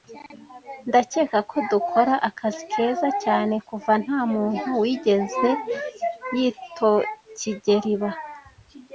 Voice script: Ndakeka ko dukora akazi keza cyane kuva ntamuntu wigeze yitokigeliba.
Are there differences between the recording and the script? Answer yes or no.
no